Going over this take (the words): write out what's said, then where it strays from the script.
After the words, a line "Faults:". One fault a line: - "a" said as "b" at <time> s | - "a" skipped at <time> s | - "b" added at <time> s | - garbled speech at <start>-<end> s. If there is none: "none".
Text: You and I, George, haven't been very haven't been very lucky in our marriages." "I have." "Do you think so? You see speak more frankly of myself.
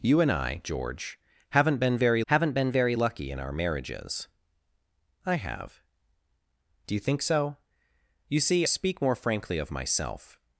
You and I, George, haven't been very haven't been very lucky in our marriages." "I have." "Do you think so? You see speak more frankly of myself.
Faults:
none